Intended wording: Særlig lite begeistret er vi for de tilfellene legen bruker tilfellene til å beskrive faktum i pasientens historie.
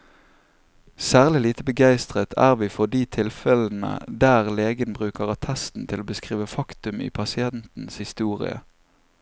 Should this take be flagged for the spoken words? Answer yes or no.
yes